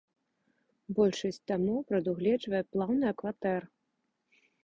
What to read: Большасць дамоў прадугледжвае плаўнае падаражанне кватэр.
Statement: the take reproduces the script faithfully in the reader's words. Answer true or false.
false